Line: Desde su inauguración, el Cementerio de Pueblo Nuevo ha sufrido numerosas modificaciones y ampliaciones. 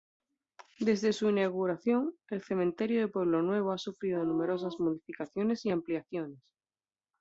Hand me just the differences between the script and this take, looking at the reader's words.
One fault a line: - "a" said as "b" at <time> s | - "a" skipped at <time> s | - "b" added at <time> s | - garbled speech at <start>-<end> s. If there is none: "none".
none